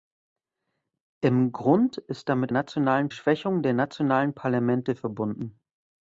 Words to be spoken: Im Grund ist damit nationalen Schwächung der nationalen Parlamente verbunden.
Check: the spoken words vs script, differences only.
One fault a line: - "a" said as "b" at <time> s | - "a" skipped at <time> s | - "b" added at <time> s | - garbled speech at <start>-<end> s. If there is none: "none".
none